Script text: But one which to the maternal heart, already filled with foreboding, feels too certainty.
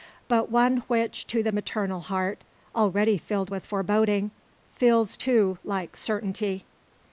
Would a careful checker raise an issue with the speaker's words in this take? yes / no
yes